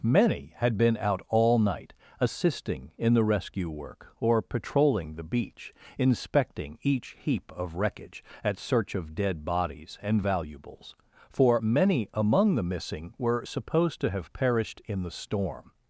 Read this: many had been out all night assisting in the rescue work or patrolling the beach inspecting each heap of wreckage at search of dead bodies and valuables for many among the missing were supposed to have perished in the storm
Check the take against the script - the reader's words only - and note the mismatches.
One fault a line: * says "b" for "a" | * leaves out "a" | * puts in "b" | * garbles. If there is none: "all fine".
all fine